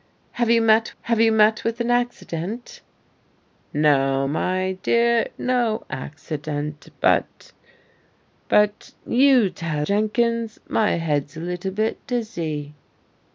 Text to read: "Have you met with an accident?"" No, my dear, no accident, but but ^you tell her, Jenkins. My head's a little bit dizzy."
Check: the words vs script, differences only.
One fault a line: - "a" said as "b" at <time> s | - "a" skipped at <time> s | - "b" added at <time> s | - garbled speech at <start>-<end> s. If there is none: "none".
- "have you met" added at 1.0 s
- "her" skipped at 9.9 s